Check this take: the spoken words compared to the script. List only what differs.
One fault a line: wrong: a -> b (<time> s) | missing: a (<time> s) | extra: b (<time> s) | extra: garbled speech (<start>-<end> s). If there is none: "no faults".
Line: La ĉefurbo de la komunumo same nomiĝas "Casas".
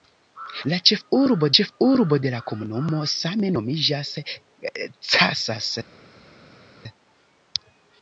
extra: ĉefurbo (1.6 s)